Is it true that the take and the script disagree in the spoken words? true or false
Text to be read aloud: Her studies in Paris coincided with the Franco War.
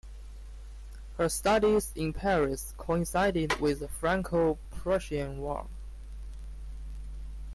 true